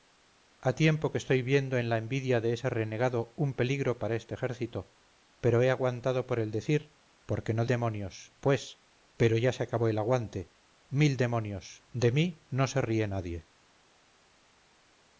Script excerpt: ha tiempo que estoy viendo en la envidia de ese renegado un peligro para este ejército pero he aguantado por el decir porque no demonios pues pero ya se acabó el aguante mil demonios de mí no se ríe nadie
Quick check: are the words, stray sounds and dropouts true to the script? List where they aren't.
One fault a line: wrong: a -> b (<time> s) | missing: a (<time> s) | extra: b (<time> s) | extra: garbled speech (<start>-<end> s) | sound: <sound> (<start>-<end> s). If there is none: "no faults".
no faults